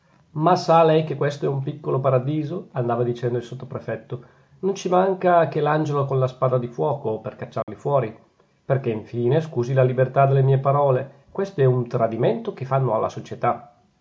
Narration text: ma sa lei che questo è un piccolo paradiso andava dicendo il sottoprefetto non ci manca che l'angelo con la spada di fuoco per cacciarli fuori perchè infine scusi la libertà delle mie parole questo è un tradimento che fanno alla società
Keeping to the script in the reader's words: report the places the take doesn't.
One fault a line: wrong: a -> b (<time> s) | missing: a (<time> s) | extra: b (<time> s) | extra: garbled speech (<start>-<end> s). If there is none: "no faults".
no faults